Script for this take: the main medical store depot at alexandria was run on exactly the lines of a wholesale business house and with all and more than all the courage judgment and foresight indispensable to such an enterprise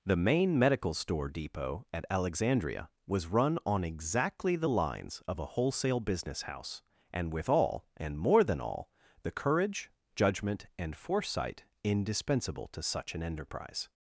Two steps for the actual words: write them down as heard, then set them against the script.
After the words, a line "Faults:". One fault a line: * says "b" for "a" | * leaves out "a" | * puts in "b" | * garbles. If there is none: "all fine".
the main medical store depot at alexandria was run on exactly the lines of a wholesale business house and with all and more than all the courage judgment and foresight indispensable to such an enterprise
Faults:
all fine